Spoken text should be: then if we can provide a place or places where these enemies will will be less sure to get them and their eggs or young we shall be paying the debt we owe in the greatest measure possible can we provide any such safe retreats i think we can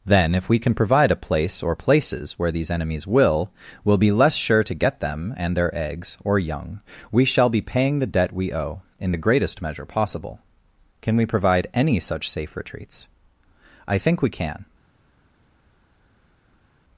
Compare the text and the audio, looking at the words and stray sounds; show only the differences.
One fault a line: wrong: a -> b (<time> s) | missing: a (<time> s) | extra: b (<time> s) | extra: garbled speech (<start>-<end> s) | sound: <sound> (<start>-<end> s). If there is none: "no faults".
no faults